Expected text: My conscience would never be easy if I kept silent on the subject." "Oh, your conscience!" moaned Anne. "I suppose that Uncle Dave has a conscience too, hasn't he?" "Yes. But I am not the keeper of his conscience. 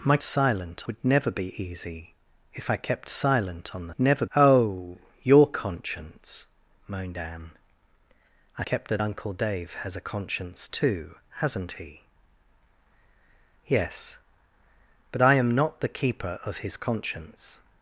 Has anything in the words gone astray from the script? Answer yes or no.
yes